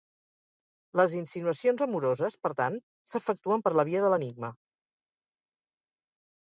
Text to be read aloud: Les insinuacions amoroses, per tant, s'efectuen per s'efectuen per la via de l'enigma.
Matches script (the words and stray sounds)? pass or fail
fail